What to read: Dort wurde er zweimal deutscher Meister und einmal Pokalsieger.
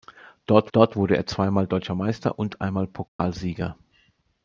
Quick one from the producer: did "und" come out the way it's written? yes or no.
yes